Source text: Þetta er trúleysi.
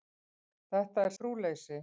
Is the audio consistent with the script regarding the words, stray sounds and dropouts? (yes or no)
yes